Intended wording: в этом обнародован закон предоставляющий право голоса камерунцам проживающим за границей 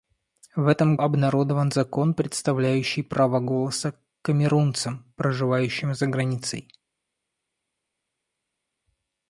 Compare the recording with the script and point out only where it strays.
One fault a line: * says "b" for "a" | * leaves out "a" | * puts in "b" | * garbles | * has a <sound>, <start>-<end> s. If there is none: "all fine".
all fine